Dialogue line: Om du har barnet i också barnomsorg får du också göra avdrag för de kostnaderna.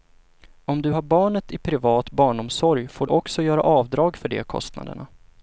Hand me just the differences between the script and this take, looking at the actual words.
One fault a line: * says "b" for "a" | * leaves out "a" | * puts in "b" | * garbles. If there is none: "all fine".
* says "privat" for "också"